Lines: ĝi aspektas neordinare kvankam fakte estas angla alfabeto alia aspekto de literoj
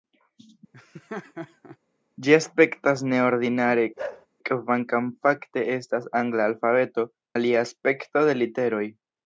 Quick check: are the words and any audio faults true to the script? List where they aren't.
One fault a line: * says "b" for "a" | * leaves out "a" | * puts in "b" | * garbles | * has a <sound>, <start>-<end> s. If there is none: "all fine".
* has a laugh, 0.7-1.8 s
* has a bark, 4.0-4.3 s